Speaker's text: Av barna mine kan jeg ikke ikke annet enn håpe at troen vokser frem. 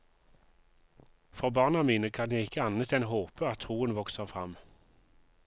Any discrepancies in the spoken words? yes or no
yes